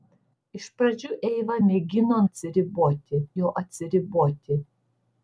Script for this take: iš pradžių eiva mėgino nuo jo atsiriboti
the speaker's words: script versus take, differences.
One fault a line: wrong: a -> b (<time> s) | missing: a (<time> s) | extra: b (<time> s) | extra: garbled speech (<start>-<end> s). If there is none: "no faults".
wrong: nuo -> atsiriboti (2.3 s)